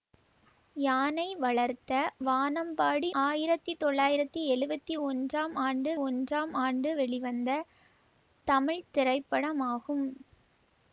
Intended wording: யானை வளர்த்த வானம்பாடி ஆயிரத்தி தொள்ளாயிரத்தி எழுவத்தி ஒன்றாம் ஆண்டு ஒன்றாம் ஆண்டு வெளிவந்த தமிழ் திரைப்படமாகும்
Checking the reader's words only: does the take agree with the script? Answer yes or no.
yes